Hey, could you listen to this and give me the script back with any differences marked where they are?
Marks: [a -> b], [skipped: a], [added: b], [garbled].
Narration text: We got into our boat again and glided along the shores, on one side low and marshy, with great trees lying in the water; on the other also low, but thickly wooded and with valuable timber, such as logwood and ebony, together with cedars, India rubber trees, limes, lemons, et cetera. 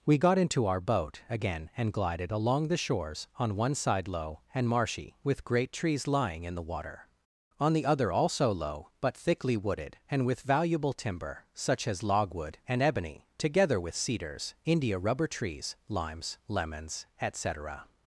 We got into our boat again and glided along the shores, on one side low and marshy, with great trees lying in the water; on the other also low, but thickly wooded and with valuable timber, such as logwood and ebony, together with cedars, India rubber trees, limes, lemons, et cetera.